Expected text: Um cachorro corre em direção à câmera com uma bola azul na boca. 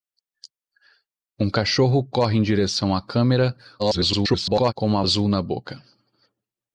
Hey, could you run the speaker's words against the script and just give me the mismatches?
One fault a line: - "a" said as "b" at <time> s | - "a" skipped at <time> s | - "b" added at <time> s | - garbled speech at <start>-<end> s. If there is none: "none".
- garbled speech at 3.8-4.7 s
- "bola" skipped at 5.0 s